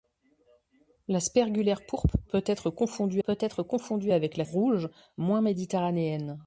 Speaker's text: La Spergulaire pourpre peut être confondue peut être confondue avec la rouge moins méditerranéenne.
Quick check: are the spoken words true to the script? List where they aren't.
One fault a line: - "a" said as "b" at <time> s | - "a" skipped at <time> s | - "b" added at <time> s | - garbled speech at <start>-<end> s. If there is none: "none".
none